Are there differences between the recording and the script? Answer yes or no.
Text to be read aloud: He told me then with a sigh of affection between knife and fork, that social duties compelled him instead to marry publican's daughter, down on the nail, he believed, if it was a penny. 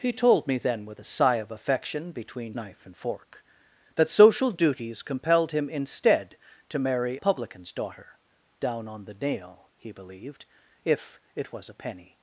no